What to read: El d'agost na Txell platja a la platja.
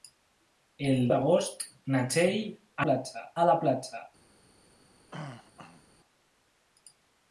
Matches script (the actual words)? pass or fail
pass